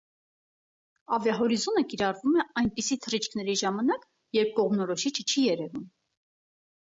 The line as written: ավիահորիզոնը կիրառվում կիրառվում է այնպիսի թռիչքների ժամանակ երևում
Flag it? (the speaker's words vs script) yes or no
yes